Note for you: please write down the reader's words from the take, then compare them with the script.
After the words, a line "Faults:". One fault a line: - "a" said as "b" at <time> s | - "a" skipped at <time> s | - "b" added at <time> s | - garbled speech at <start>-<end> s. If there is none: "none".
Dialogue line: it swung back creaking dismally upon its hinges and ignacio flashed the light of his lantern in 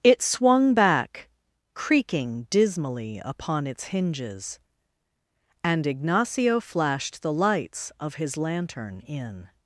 it swung back creaking dismally upon its hinges and ignacio flashed the lights of his lantern in
Faults:
- "light" said as "lights" at 7.3 s